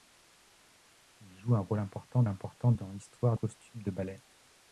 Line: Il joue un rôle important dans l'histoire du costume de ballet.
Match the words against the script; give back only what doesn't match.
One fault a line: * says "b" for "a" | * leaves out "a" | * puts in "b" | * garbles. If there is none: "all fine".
* puts in "important"
* leaves out "du"